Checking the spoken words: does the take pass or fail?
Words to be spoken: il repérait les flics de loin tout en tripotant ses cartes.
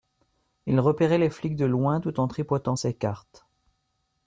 pass